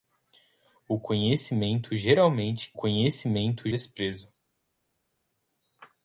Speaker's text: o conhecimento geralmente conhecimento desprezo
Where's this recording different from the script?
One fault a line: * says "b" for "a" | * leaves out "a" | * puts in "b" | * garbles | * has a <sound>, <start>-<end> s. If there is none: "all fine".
all fine